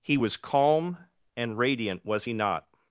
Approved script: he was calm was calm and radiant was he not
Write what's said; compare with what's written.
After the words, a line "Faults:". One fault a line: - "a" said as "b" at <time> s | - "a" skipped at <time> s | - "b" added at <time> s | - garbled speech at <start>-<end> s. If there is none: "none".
he was calm and radiant was he not
Faults:
- "was calm" skipped at 1.0 s